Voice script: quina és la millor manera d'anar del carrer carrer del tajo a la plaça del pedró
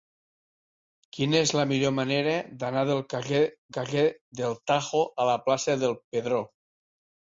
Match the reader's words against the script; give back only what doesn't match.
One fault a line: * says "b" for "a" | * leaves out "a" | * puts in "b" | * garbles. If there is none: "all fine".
all fine